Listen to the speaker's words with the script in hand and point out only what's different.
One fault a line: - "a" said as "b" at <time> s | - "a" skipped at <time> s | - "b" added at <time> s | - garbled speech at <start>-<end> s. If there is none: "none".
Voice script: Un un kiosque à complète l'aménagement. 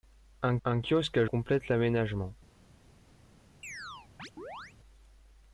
none